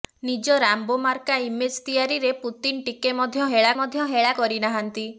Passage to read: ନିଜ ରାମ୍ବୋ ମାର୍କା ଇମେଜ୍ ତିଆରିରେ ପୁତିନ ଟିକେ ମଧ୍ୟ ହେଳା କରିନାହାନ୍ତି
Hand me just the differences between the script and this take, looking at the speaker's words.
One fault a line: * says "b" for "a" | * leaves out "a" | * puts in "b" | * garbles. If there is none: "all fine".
* puts in "ମଧ୍ୟ ହେଳା"